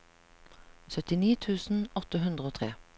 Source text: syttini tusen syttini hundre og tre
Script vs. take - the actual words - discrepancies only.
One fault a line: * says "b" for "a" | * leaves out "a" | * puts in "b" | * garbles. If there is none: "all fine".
* says "åtte" for "syttini"